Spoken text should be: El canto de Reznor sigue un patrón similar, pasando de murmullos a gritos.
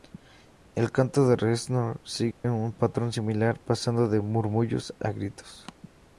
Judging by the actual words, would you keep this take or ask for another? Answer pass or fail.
pass